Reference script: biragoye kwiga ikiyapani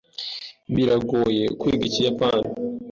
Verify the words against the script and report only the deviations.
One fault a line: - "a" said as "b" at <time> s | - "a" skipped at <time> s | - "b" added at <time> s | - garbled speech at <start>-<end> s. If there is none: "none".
none